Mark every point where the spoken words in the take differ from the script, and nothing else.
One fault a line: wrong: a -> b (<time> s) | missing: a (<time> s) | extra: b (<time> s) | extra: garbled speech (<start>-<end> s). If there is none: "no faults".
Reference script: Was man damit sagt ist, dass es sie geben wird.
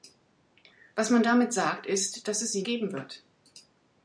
no faults